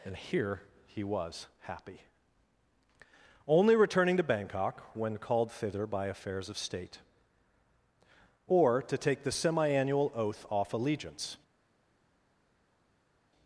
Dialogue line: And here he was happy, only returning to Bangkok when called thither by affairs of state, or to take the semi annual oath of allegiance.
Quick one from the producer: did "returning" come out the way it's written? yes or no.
yes